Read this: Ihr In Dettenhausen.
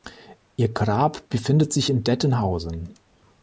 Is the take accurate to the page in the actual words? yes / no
no